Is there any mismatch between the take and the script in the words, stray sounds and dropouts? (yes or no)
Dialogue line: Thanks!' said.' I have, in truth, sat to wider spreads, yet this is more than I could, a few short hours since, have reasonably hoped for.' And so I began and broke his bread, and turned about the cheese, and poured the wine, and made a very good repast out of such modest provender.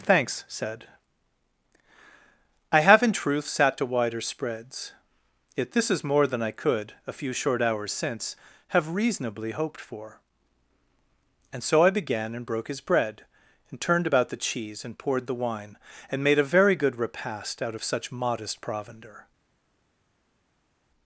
no